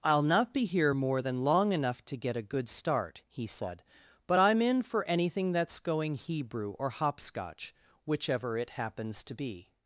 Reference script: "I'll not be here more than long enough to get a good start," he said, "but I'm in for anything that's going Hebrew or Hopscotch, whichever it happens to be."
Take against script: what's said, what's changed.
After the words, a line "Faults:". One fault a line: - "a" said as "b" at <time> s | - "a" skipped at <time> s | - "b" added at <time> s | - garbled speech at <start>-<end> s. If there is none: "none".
"I'll not be here more than long enough to get a good start," he said, "but I'm in for anything that's going Hebrew or Hopscotch, whichever it happens to be."
Faults:
none